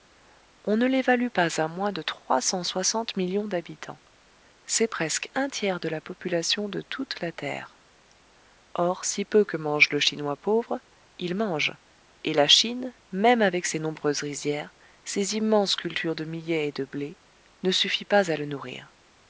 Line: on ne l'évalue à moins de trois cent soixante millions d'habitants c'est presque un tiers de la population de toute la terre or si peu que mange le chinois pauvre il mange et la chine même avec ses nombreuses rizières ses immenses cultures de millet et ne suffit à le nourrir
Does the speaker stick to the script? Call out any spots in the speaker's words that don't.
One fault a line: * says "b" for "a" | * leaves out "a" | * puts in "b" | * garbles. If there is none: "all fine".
* puts in "pas"
* puts in "de blé"
* puts in "pas"